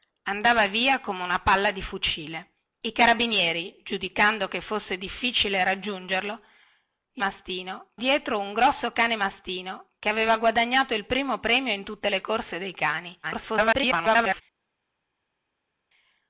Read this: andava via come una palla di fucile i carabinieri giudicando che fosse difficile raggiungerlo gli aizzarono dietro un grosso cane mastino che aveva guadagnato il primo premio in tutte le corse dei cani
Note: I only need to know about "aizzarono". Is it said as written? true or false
false